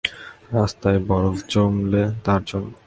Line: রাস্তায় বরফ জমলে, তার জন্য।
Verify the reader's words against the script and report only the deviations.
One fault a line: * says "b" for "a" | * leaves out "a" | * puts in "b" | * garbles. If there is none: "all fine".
all fine